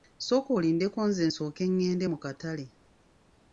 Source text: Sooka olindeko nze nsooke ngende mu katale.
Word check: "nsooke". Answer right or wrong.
right